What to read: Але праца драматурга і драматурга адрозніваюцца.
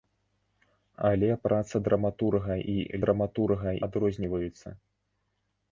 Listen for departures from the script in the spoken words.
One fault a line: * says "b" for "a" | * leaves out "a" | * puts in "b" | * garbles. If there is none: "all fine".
all fine